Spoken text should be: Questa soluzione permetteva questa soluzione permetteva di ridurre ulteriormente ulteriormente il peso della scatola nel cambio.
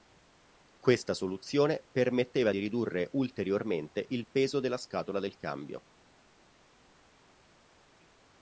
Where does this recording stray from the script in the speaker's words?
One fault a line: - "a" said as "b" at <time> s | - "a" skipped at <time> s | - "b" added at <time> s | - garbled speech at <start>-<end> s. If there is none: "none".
- "questa soluzione permetteva" skipped at 2.5 s
- "ulteriormente" skipped at 4.1 s
- "nel" said as "del" at 5.2 s